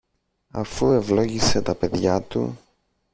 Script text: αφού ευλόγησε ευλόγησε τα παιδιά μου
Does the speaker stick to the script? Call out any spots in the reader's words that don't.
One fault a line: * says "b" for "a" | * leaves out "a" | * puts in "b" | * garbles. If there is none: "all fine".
* leaves out "ευλόγησε"
* says "του" for "μου"